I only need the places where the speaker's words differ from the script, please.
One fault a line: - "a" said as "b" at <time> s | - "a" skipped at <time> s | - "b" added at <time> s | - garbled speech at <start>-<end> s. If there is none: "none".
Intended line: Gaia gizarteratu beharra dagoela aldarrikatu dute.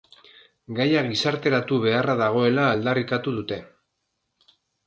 none